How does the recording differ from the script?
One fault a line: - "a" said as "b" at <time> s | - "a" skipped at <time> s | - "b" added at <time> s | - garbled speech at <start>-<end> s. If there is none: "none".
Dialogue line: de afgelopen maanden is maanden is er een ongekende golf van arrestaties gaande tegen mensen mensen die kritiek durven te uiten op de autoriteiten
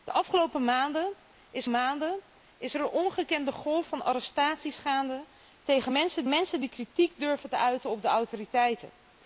none